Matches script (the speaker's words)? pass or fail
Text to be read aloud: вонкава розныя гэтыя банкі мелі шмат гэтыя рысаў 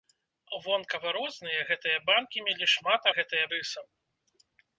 pass